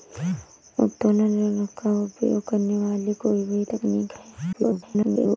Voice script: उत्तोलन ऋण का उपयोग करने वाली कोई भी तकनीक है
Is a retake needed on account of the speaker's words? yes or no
yes